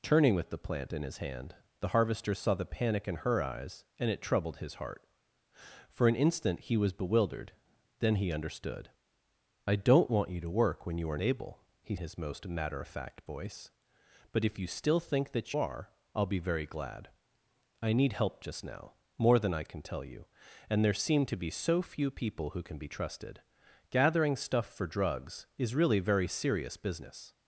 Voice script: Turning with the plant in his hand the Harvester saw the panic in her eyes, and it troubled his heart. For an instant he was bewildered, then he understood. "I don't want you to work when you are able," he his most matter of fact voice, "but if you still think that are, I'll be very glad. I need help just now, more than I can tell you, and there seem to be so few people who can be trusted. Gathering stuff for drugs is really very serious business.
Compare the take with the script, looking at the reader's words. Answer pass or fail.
pass